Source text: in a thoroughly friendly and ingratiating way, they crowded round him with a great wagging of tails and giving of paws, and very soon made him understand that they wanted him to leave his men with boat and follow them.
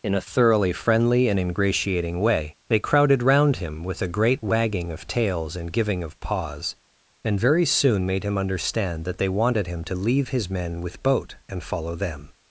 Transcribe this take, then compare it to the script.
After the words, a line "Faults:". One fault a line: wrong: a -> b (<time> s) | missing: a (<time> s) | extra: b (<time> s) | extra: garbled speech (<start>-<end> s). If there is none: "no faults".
in a thoroughly friendly and ingratiating way, they crowded round him with a great wagging of tails and giving of paws, and very soon made him understand that they wanted him to leave his men with boat and follow them.
Faults:
no faults